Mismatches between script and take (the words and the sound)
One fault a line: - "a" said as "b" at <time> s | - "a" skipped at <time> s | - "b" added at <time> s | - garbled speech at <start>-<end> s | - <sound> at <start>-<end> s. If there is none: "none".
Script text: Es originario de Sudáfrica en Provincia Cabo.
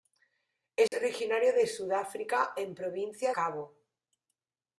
- dropout at 0.9-0.9 s